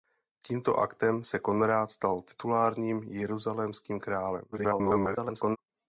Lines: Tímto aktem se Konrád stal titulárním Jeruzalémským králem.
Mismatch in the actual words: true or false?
true